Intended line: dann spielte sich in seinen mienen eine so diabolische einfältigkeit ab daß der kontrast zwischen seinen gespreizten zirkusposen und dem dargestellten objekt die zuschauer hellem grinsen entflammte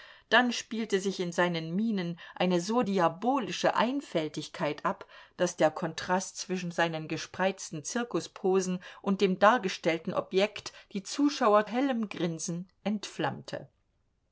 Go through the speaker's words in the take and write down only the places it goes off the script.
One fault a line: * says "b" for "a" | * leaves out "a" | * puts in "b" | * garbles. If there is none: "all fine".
all fine